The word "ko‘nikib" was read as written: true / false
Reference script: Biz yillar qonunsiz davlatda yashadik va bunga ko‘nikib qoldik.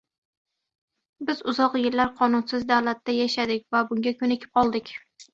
true